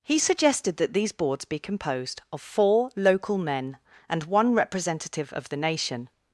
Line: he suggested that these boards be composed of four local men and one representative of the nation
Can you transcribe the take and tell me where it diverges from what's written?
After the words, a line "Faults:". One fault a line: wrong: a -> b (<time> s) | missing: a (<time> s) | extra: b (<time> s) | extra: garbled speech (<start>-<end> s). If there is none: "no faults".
he suggested that these boards be composed of four local men and one representative of the nation
Faults:
no faults